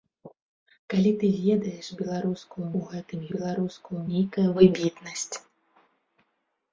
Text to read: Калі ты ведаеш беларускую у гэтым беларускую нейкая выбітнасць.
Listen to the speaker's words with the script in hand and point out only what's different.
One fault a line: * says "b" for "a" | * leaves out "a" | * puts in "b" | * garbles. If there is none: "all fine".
all fine